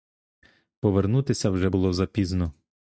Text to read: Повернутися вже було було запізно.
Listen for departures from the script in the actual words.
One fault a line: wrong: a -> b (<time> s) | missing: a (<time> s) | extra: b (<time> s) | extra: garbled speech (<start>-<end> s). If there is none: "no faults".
missing: було (1.9 s)